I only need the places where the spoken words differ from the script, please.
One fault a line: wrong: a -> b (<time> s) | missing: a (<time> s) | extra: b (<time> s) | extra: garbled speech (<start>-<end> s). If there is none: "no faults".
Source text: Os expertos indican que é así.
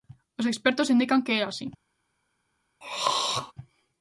no faults